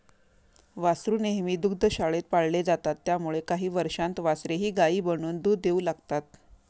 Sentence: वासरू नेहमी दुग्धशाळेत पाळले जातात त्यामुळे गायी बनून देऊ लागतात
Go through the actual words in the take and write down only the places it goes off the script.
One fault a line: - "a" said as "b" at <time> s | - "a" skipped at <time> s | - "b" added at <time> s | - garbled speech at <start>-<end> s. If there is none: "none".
- "काही वर्षांत वासरेही" added at 3.4 s
- "दूध" added at 5.4 s